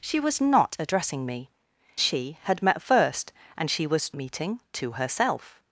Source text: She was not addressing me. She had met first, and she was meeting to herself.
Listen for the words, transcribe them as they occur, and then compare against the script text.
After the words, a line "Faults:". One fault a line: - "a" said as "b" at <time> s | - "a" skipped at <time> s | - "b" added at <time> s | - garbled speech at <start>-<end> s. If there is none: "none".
She was not addressing me. She had met first, and she was meeting to herself.
Faults:
none